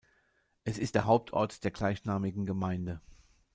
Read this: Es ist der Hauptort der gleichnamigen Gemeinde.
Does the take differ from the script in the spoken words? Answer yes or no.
no